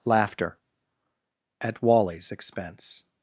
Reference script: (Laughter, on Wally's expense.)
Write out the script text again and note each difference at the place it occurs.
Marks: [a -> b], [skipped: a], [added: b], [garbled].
(Laughter, [on -> at] Wally's expense.)